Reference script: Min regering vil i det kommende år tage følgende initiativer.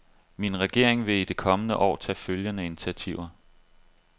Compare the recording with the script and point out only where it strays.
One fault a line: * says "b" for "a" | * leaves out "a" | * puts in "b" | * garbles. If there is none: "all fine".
all fine